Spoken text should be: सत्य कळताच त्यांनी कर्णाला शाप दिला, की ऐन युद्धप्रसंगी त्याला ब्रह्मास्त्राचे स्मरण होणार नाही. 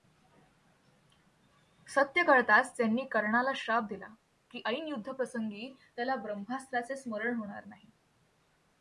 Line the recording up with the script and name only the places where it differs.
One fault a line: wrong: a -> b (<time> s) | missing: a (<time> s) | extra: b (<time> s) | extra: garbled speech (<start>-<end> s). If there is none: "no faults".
no faults